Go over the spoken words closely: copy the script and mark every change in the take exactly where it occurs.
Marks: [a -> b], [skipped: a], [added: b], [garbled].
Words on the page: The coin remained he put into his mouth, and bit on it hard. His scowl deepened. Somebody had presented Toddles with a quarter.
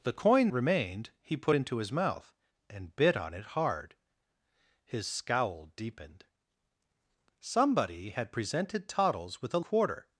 The coin remained he put into his mouth, and bit on it hard. His scowl deepened. Somebody had presented Toddles with a quarter.